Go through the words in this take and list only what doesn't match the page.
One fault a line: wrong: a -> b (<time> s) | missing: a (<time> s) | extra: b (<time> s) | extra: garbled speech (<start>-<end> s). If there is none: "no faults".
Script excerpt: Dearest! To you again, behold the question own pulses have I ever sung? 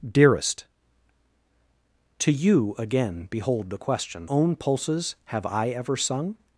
no faults